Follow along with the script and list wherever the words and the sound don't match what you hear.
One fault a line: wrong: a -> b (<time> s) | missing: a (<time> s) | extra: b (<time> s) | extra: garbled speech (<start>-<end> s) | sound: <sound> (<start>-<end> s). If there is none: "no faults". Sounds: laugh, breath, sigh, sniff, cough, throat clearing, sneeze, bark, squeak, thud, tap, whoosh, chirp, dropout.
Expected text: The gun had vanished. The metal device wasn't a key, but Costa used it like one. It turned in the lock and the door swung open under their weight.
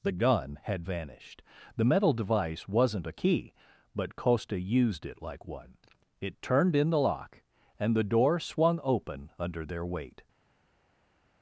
no faults